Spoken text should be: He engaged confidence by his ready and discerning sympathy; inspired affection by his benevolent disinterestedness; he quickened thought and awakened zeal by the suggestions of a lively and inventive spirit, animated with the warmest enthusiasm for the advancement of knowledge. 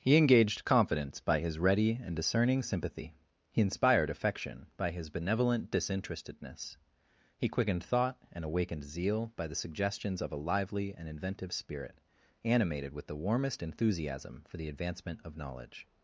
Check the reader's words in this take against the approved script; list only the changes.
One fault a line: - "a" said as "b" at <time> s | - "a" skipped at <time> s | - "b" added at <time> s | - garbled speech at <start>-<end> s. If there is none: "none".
- "he" added at 3.5 s